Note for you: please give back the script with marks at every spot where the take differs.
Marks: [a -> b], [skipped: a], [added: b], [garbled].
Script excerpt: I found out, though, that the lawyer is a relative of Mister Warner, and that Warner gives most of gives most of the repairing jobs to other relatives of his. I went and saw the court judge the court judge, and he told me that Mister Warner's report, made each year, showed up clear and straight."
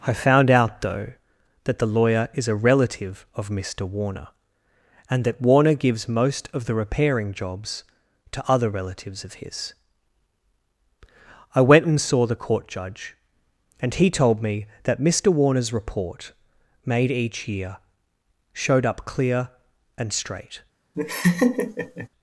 I found out, though, that the lawyer is a relative of Mister Warner, and that Warner gives most of [skipped: gives most of] the repairing jobs to other relatives of his. I went and saw the court judge [skipped: the court judge,] and he told me that Mister Warner's report, made each year, showed up clear and straight."